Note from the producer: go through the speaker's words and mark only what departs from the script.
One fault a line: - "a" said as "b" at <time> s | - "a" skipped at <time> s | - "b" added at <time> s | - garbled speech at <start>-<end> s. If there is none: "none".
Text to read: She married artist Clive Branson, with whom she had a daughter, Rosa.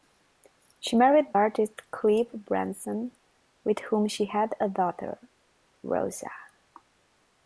none